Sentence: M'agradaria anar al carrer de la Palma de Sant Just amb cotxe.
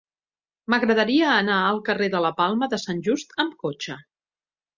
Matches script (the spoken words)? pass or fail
pass